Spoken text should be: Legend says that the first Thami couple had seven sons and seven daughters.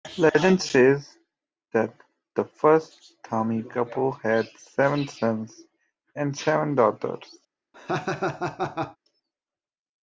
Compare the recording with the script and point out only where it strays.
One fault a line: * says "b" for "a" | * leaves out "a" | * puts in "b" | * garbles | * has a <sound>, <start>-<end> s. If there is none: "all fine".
* has a laugh, 7.7-9.0 s